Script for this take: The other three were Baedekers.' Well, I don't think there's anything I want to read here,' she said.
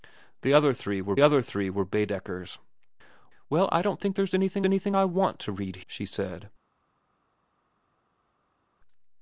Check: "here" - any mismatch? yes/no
yes